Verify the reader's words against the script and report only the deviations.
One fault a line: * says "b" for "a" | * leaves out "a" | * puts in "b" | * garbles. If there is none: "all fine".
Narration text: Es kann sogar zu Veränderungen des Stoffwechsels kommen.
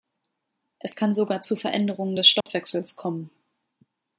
all fine